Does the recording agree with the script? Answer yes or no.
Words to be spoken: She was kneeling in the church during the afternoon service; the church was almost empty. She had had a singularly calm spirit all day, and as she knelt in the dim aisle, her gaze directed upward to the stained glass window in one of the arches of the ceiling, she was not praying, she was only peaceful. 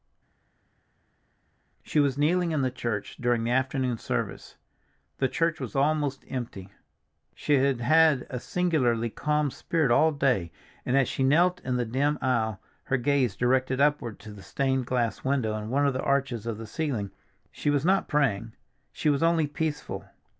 yes